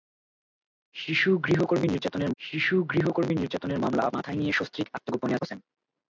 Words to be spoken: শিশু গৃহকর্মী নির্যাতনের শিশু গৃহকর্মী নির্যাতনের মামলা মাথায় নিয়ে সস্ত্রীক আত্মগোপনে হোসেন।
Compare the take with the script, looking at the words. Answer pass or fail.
pass